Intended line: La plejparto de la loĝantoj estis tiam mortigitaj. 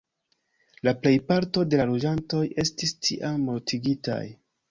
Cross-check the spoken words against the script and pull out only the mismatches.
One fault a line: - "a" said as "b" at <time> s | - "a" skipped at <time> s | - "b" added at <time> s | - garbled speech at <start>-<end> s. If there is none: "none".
none